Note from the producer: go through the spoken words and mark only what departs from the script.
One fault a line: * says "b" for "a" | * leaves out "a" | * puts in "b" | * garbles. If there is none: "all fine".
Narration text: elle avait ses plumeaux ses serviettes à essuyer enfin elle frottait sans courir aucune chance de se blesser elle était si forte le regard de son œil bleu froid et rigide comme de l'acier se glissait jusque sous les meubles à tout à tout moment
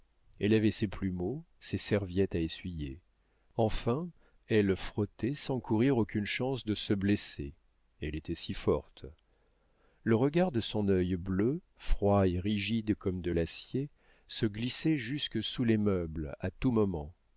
* leaves out "à tout"